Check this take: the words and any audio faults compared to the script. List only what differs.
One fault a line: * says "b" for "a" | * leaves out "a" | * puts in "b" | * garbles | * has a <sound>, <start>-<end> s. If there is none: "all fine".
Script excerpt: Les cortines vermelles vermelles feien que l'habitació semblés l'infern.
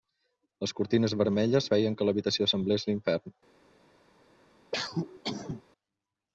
* leaves out "vermelles"
* has a cough, 4.7-5.6 s